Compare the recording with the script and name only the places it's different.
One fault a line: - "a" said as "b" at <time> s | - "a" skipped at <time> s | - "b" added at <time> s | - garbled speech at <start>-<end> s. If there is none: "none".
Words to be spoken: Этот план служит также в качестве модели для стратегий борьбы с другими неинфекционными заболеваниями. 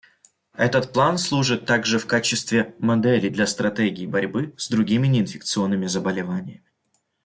none